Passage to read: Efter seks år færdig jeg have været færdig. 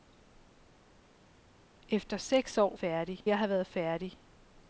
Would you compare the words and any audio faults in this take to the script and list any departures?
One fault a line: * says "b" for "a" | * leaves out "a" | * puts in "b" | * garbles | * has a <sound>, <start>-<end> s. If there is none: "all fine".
all fine